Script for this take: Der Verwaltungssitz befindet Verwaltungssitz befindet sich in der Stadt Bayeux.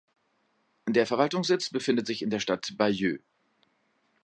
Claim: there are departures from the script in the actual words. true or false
true